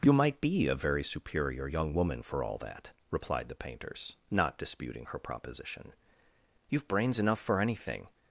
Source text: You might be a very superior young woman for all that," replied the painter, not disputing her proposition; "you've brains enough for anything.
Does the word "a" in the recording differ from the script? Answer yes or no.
no